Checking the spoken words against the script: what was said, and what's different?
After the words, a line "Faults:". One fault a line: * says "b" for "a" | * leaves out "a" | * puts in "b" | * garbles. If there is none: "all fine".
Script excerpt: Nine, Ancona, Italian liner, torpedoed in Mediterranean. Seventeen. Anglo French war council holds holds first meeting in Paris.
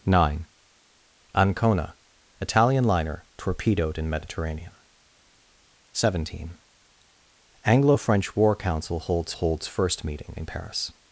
Nine, Ancona, Italian liner, torpedoed in Mediterranean. Seventeen. Anglo French war council holds holds first meeting in Paris.
Faults:
all fine